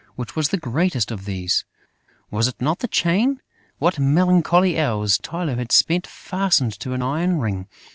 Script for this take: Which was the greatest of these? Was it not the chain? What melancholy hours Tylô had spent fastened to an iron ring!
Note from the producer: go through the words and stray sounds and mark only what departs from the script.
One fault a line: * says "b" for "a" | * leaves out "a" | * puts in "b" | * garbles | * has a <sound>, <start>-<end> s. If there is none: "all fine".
all fine